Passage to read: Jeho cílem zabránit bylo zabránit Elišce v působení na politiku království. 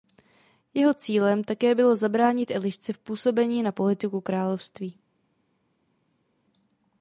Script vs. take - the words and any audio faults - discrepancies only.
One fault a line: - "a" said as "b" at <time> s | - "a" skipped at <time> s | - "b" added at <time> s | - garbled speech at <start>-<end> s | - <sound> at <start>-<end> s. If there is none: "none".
- "zabránit" said as "také" at 1.4 s